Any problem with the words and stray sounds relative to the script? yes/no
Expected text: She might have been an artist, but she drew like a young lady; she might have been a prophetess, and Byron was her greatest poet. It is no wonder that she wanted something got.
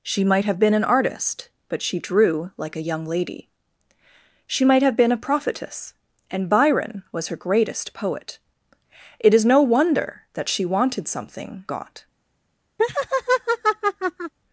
yes